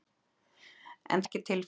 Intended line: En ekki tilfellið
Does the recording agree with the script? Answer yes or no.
yes